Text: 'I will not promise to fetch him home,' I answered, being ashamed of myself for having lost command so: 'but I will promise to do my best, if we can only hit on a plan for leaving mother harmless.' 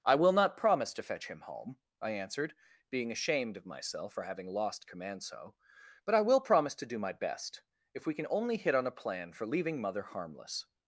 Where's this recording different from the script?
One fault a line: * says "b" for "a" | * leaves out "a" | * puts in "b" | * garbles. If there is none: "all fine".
all fine